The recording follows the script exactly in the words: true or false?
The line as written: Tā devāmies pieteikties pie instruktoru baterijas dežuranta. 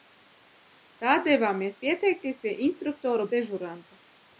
false